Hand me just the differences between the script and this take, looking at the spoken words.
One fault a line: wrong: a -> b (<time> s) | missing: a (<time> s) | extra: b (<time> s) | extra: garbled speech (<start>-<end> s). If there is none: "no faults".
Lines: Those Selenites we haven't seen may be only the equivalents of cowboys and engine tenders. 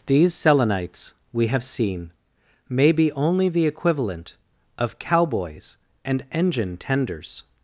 wrong: Those -> These (0.1 s)
wrong: haven't -> have (1.5 s)
wrong: equivalents -> equivalent (3.7 s)